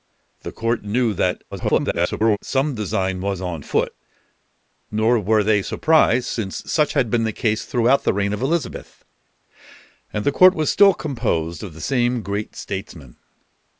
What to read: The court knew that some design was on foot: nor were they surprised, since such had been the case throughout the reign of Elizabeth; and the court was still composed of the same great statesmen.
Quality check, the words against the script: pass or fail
fail